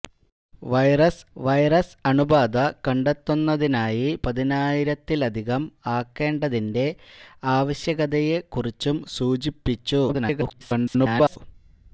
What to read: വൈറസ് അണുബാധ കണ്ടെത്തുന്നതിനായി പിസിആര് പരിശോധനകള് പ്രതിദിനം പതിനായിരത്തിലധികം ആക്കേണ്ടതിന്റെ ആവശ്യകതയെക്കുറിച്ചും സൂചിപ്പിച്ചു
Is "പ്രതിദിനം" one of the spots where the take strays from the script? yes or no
yes